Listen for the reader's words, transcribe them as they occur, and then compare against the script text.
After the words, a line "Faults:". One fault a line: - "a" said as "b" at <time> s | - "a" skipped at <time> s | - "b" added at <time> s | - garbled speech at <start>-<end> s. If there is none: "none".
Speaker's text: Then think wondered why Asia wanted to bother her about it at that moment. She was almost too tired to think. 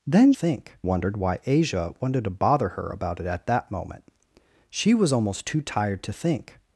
Then think wondered why Asia wanted to bother her about it at that moment. She was almost too tired to think.
Faults:
none